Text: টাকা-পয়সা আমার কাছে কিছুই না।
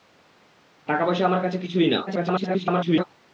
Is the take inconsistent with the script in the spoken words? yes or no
yes